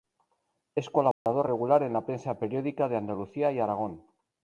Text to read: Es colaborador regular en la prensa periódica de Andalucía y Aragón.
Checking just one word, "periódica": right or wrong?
right